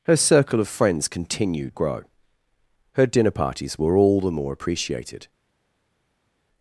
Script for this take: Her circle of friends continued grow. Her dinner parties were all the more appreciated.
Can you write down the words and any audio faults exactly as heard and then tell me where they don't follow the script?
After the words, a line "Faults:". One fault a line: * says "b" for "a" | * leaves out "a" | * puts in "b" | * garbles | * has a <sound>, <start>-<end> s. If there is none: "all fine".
Her circle of friends continued grow. Her dinner parties were all the more appreciated.
Faults:
all fine